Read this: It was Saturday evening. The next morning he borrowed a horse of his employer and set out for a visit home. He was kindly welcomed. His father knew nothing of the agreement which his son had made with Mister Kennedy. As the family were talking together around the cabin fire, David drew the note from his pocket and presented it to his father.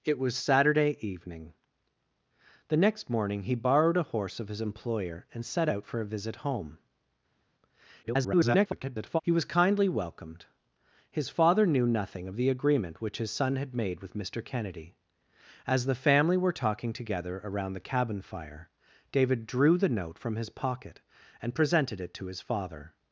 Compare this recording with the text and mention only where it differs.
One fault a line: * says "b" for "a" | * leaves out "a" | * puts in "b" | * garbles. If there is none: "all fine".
* garbles